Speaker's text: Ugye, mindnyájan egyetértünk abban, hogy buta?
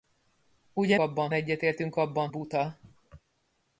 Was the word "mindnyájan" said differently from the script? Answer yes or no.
yes